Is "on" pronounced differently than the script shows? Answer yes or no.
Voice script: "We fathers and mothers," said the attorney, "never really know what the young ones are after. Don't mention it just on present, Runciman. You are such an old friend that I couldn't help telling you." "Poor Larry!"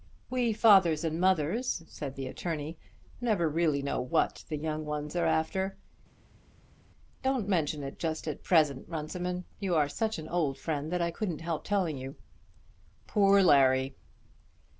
yes